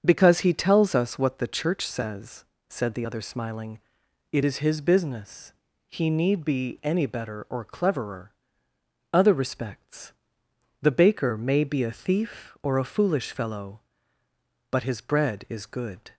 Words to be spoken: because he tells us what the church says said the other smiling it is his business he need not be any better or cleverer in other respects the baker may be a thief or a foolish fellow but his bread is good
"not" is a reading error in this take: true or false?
true